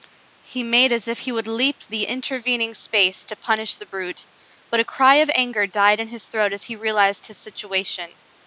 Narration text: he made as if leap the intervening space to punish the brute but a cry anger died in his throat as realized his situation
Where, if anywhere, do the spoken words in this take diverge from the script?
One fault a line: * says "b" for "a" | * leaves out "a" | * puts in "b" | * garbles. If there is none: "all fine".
* puts in "he would"
* puts in "of"
* puts in "he"